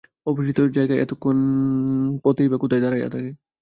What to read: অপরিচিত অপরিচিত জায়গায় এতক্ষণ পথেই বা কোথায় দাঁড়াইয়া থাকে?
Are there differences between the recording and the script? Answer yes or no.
yes